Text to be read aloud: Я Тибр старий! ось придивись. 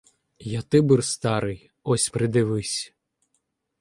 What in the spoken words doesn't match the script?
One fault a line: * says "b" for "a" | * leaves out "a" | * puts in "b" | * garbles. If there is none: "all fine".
all fine